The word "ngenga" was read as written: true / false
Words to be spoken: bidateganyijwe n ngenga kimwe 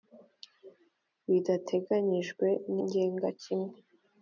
true